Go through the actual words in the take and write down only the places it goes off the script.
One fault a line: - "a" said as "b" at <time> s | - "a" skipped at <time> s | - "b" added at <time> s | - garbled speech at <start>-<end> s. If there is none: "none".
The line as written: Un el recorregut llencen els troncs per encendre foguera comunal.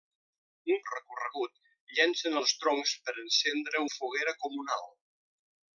none